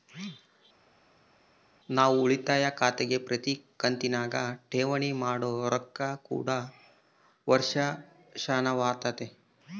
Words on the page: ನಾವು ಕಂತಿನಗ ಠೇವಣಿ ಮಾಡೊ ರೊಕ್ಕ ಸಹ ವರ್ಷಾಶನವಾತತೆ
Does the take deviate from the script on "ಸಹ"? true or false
true